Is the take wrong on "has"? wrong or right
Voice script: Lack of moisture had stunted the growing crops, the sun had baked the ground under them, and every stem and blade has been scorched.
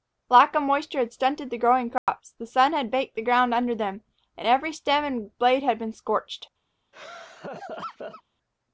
wrong